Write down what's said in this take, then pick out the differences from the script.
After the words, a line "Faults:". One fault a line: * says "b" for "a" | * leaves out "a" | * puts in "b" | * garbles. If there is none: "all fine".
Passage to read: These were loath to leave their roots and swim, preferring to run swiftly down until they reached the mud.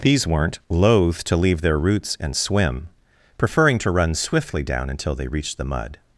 These weren't loath to leave their roots and swim, preferring to run swiftly down until they reached the mud.
Faults:
* says "weren't" for "were"